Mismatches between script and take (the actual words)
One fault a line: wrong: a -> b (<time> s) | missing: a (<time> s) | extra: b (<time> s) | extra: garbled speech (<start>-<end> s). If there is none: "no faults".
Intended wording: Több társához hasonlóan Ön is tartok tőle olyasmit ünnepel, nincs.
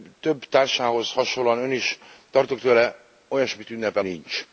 no faults